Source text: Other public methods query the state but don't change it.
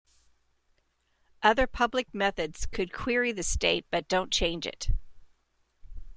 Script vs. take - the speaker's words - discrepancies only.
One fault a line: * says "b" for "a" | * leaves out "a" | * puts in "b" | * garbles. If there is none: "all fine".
* puts in "could"